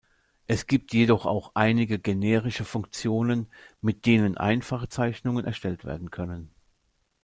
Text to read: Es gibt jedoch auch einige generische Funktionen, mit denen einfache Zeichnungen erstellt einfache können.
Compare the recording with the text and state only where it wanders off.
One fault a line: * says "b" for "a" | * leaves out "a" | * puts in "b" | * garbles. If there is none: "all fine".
* says "werden" for "einfache"